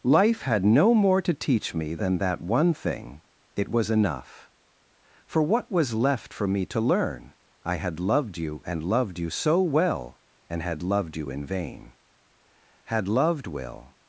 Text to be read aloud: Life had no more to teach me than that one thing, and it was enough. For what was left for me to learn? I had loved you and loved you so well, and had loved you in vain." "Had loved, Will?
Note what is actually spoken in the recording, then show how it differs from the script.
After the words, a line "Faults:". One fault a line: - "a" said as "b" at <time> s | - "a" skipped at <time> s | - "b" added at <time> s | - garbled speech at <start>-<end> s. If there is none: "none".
Life had no more to teach me than that one thing, it was enough. For what was left for me to learn? I had loved you and loved you so well, and had loved you in vain." "Had loved, Will?
Faults:
- "and" skipped at 3.2 s